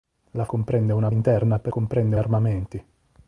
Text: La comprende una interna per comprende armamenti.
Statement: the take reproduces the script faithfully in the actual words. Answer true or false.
true